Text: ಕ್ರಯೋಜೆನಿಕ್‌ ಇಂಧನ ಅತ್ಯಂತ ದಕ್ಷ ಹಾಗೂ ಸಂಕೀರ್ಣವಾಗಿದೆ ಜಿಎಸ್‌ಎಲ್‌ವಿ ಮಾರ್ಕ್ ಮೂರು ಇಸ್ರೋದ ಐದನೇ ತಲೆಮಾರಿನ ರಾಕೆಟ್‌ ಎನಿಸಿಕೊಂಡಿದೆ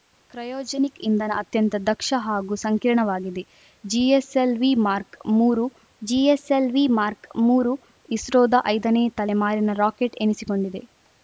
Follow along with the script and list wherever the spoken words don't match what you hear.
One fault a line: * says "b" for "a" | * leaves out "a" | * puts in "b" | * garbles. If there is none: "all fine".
* puts in "ಜಿಎಸ್‌ಎಲ್‌ವಿ ಮಾರ್ಕ್ ಮೂರು"